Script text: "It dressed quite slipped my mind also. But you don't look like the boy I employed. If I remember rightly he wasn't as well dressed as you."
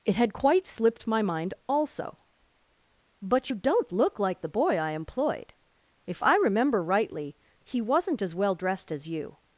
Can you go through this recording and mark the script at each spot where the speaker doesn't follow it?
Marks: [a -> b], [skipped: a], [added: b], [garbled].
"It [dressed -> had] quite slipped my mind also. But you don't look like the boy I employed. If I remember rightly he wasn't as well dressed as you."